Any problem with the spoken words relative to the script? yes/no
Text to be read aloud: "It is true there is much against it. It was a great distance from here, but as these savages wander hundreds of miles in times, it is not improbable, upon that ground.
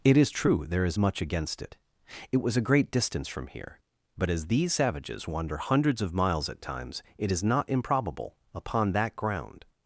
yes